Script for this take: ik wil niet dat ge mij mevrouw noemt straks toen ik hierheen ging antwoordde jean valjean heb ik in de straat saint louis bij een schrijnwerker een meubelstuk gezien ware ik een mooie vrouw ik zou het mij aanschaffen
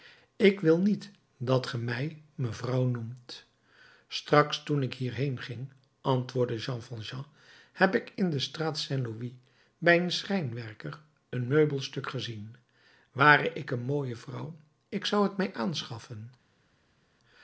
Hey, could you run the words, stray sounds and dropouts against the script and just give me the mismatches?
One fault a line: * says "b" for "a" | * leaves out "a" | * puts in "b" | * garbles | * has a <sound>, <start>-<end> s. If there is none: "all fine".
all fine